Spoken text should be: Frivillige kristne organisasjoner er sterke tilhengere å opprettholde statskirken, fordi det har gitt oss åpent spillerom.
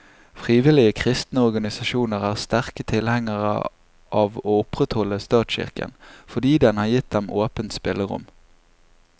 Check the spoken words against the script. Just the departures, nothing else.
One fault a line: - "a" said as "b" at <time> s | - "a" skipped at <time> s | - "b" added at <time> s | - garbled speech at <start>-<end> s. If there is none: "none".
- "av" added at 4.2 s
- "det" said as "den" at 6.7 s
- "oss" said as "dem" at 7.2 s